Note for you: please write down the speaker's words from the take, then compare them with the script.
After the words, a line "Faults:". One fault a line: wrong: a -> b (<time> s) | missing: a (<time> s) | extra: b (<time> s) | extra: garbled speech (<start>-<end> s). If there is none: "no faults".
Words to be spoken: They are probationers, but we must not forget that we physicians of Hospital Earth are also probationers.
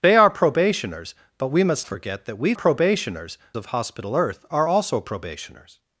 They are probationers, but we must forget that we probationers of Hospital Earth are also probationers.
Faults:
missing: not (1.9 s)
wrong: physicians -> probationers (2.5 s)